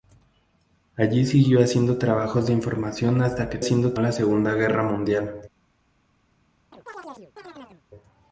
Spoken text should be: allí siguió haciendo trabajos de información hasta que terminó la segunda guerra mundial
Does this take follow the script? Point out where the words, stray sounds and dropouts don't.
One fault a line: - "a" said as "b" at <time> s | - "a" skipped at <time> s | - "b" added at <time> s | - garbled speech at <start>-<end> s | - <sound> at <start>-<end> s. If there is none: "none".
- "terminó" said as "haciendo" at 3.6 s
- chirp at 6.7-7.8 s